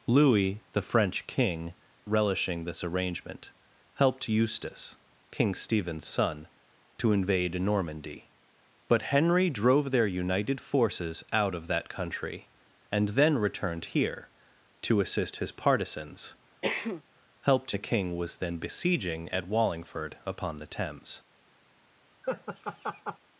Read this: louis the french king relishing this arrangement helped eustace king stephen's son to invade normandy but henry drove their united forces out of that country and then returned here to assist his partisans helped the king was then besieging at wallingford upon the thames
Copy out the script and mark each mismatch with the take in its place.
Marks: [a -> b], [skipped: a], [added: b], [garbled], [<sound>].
louis the french king relishing this arrangement helped eustace king stephen's son to invade normandy but henry drove their united forces out of that country and then returned here to assist his partisans [cough] helped the king was then besieging at wallingford upon the thames [laugh]